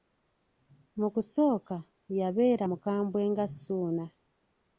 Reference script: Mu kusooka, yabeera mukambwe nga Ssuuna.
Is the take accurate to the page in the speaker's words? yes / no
yes